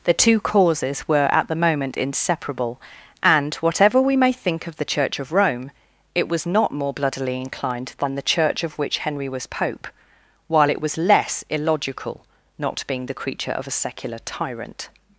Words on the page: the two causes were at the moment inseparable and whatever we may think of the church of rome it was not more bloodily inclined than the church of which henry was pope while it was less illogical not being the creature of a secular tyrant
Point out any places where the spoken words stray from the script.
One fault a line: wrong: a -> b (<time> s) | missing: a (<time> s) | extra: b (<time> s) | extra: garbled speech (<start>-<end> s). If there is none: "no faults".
no faults